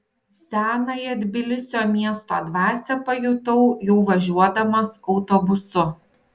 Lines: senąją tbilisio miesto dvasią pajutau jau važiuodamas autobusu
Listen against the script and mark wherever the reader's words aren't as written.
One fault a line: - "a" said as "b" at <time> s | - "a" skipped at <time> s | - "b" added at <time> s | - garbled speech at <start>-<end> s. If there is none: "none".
none